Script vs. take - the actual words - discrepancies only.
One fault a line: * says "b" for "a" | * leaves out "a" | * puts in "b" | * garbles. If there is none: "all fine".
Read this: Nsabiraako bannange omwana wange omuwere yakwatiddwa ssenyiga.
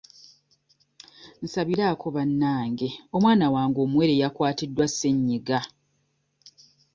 all fine